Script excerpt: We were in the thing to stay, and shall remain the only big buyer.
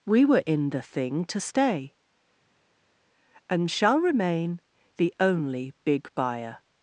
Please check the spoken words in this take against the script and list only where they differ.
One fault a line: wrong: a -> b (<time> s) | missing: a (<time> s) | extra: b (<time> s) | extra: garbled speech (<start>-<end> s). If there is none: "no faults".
no faults